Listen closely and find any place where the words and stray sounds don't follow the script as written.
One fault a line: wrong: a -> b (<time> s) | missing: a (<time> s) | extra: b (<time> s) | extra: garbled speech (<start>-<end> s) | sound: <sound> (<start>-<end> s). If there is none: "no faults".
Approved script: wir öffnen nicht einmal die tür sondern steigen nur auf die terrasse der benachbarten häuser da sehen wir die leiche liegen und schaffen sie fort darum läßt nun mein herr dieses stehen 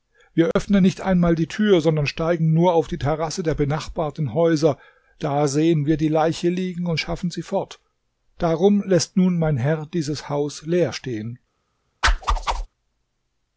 sound: dropout (0.5-0.6 s)
extra: haus leer (10.3 s)
sound: whoosh (12.0-12.7 s)